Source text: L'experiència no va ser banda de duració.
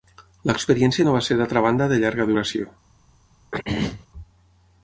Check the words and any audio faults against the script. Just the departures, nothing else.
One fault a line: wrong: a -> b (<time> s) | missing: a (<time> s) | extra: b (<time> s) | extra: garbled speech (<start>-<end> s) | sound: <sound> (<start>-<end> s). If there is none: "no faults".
extra: d'altra (1.4 s)
extra: llarga (2.0 s)
sound: throat clearing (3.5-4.1 s)